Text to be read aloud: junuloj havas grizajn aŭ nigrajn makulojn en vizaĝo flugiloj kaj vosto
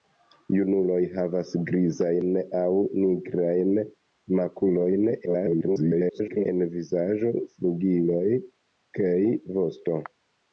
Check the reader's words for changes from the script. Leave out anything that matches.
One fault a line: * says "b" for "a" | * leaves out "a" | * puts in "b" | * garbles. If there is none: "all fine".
* garbles